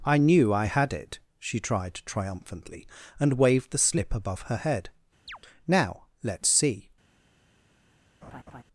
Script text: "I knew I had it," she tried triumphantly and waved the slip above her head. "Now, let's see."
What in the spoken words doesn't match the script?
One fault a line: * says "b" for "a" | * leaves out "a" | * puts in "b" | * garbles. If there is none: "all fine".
all fine